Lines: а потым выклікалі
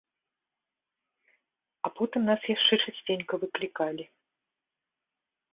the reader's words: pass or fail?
fail